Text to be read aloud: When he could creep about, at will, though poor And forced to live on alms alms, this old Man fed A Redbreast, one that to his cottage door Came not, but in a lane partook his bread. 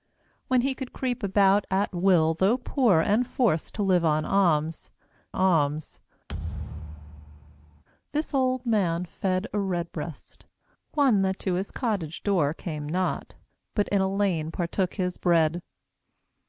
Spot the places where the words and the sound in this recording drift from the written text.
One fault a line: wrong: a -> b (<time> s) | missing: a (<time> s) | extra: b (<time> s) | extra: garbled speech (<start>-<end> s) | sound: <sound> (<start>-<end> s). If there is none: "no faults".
sound: thud (6.3-7.8 s)